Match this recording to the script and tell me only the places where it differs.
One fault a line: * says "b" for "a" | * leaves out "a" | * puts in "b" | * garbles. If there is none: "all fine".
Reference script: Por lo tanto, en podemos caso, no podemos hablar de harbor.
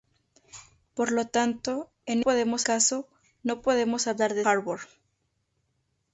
all fine